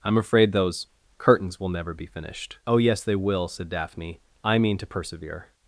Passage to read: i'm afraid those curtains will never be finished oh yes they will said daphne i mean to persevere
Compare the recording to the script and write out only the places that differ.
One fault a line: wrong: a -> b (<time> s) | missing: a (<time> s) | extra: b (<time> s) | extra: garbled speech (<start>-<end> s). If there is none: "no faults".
no faults